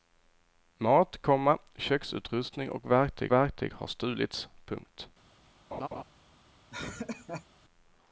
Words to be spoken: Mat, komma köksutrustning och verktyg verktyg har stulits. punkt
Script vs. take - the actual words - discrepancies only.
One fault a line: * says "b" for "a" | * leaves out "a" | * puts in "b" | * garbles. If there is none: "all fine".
all fine